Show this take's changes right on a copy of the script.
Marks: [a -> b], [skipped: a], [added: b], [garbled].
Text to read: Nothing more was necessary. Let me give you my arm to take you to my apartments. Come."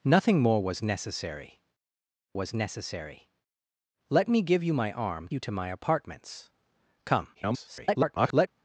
Nothing more was necessary. [added: was necessary] Let me give you my arm [skipped: to take] you to my apartments. Come." [garbled]